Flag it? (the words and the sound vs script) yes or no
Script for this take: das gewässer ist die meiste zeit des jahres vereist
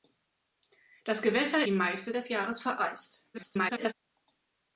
yes